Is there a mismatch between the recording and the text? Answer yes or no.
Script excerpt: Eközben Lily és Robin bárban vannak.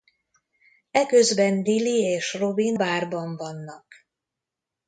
no